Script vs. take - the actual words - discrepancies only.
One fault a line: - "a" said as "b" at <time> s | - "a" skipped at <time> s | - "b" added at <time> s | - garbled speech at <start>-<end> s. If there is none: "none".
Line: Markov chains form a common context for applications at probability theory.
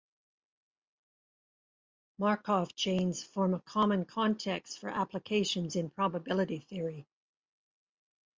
- "at" said as "in" at 5.7 s